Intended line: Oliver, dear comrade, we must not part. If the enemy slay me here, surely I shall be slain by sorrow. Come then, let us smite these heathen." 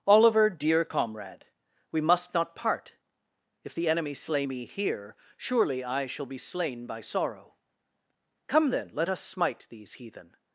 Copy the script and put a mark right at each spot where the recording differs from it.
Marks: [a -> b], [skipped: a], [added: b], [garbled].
Oliver, dear comrade, we must not part. If the enemy slay me here, surely I shall be slain by sorrow. Come then, let us smite these heathen."